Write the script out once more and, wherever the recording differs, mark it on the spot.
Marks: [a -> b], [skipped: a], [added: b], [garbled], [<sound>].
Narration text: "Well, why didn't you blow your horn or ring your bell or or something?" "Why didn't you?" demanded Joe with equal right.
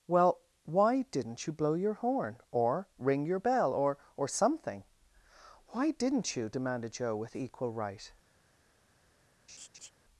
"Well, why didn't you blow your horn or ring your bell or or something?" "Why didn't you?" demanded Joe with equal right. [laugh]